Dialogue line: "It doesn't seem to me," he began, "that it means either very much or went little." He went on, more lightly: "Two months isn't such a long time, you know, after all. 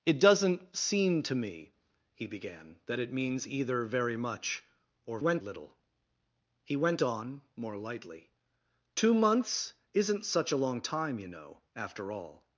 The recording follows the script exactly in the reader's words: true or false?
true